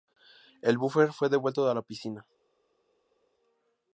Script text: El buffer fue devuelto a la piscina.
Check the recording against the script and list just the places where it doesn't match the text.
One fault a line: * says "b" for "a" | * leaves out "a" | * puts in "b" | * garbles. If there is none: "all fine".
all fine